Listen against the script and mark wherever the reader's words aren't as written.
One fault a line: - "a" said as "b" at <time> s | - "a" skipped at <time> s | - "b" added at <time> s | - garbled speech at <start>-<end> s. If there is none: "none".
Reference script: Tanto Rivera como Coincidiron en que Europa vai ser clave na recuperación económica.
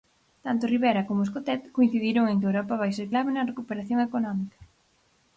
- "Escotet" added at 1.2 s